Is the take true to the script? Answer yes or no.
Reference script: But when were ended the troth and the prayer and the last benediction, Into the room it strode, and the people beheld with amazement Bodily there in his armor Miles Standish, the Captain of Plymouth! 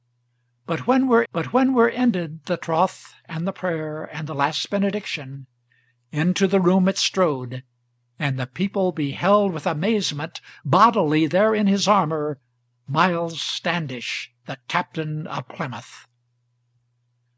no